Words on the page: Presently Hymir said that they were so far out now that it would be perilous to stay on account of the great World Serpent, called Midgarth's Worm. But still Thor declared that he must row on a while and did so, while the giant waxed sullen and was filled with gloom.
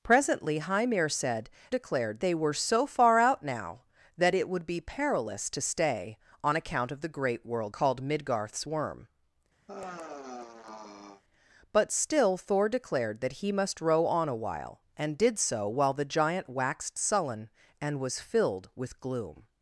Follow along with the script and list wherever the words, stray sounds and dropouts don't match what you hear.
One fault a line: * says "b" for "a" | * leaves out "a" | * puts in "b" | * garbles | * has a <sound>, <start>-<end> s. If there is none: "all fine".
* says "declared" for "that"
* leaves out "Serpent"
* has a sigh, 9.7-11.2 s